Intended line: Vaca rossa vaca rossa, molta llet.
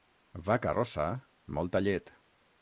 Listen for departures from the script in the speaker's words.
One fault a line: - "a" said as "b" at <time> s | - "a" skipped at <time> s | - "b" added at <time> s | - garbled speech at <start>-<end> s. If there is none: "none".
- "vaca rossa" skipped at 1.1 s